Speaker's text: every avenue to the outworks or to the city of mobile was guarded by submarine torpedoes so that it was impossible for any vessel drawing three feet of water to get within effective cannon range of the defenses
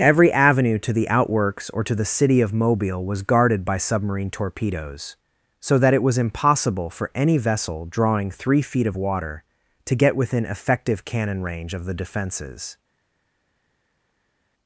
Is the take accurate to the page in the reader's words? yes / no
yes